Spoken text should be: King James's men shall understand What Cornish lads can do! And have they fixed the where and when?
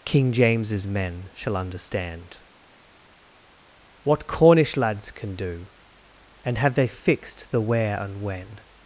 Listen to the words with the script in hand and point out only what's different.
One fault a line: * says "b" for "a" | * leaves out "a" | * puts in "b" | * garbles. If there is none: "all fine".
all fine